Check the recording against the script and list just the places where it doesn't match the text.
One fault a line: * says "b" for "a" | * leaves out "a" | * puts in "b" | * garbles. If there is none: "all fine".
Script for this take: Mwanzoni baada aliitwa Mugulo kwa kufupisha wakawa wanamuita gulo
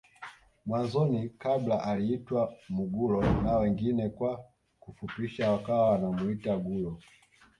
* says "kabla" for "baada"
* puts in "na wengine"